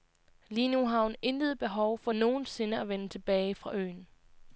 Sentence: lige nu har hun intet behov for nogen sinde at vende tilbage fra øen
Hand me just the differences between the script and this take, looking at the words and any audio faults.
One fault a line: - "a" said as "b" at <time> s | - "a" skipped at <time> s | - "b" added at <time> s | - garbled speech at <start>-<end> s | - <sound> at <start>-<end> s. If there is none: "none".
none